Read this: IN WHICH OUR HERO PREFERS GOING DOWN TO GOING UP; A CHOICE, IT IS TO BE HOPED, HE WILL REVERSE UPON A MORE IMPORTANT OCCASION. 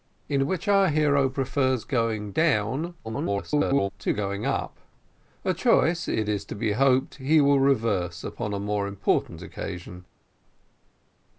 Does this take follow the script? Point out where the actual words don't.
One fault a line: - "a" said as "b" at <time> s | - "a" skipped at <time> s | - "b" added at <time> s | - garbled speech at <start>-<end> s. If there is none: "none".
- garbled speech at 3.0-3.9 s